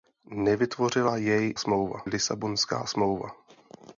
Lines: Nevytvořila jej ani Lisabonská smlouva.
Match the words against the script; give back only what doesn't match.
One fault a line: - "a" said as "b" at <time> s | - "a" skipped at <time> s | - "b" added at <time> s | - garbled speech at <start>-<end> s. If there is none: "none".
- "ani" said as "smlouva" at 1.6 s